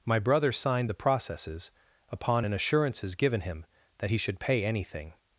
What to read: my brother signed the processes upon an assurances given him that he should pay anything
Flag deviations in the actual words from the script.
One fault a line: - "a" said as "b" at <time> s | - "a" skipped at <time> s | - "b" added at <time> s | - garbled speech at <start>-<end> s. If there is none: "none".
none